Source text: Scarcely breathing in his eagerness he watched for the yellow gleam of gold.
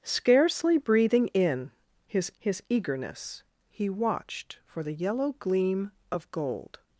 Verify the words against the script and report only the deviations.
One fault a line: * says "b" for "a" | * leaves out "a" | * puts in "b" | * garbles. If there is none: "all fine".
* puts in "his"